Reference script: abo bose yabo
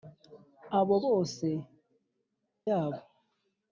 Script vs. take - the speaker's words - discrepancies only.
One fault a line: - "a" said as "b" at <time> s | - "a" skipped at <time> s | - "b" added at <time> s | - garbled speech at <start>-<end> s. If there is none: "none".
none